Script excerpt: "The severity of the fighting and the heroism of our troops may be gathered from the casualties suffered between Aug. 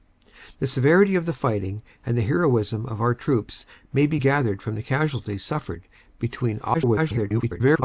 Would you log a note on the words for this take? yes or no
yes